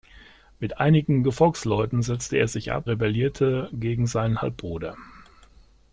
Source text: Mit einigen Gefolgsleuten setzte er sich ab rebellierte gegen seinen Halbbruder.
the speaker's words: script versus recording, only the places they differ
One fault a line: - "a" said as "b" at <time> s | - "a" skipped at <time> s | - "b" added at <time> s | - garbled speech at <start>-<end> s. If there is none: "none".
none